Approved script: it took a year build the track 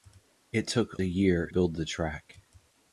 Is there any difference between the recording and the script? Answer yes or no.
no